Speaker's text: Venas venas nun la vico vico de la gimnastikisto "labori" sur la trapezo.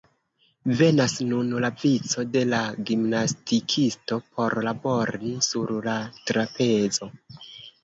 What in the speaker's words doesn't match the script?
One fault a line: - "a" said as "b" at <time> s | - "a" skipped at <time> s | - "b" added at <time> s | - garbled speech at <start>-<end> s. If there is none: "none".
- "venas" skipped at 1.1 s
- "vico" skipped at 2.2 s
- "por" added at 4.4 s